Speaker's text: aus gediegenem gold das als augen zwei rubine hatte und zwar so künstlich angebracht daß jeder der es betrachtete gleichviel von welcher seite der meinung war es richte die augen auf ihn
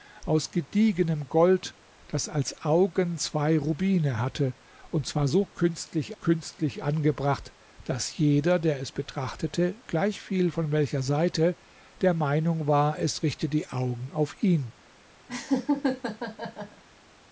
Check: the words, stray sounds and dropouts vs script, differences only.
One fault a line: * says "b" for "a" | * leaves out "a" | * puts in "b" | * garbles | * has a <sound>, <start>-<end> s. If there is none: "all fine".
* puts in "künstlich"
* has a laugh, 15.3-16.8 s